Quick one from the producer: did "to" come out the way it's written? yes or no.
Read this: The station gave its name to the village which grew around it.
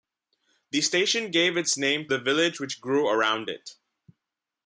no